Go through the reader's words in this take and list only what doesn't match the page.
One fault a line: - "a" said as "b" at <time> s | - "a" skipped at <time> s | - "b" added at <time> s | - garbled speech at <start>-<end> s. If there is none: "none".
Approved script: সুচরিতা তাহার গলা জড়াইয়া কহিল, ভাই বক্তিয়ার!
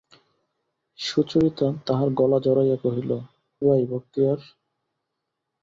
none